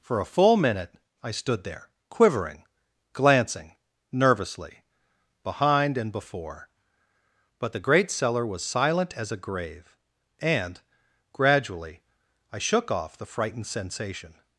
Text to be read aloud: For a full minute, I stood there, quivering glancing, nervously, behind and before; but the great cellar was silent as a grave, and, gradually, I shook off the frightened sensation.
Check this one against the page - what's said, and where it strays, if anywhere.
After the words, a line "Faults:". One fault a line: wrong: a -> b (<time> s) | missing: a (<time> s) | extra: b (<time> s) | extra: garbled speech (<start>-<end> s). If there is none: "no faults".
For a full minute, I stood there, quivering glancing, nervously, behind and before; but the great cellar was silent as a grave, and, gradually, I shook off the frightened sensation.
Faults:
no faults